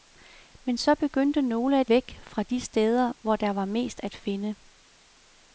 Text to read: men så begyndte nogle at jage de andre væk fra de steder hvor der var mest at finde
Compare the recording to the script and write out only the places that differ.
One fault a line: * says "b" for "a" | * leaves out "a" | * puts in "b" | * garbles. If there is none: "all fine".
* leaves out "jage de andre"